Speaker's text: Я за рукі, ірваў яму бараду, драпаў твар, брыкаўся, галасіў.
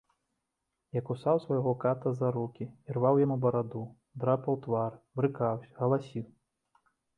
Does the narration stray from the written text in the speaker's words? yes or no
yes